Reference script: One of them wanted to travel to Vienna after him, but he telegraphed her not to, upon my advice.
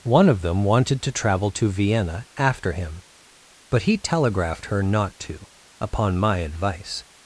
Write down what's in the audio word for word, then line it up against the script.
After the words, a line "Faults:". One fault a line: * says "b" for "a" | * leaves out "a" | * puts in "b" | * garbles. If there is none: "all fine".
One of them wanted to travel to Vienna after him, but he telegraphed her not to, upon my advice.
Faults:
all fine